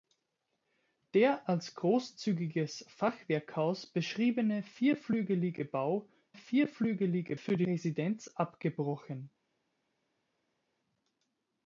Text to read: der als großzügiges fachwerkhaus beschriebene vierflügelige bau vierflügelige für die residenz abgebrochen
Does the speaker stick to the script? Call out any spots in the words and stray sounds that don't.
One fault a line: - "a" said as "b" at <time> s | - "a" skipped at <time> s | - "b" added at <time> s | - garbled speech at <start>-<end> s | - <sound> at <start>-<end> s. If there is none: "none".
none